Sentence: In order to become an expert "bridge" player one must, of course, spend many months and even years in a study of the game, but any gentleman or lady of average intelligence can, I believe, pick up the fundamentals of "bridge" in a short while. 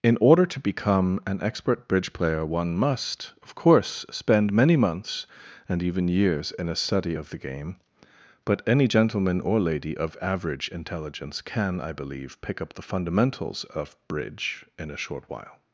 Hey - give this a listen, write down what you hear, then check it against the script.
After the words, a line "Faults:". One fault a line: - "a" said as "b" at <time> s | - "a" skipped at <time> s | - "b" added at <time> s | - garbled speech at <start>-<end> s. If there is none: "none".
In order to become an expert "bridge" player one must, of course, spend many months and even years in a study of the game, but any gentleman or lady of average intelligence can, I believe, pick up the fundamentals of "bridge" in a short while.
Faults:
none